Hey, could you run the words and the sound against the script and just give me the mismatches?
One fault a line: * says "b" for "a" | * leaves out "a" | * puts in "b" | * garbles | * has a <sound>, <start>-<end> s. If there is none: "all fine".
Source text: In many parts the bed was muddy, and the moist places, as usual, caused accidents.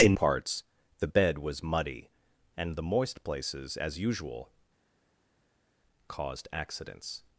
* leaves out "many"